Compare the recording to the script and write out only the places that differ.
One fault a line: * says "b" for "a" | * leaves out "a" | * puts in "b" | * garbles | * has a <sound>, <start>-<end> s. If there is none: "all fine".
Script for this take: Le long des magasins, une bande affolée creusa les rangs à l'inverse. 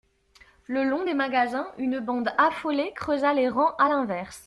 all fine